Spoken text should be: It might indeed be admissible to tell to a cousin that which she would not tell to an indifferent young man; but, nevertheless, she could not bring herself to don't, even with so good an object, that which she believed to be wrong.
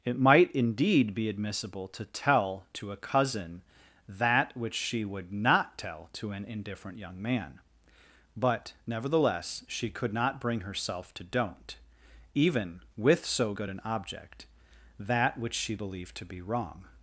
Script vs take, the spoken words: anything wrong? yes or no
no